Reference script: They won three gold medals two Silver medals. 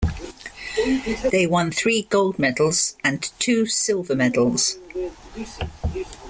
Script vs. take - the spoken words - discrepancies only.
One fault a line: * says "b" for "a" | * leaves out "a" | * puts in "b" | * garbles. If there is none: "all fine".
* puts in "and"